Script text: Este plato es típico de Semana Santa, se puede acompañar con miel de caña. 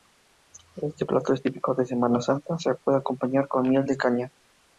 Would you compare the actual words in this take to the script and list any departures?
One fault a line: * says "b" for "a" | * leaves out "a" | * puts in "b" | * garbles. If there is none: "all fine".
all fine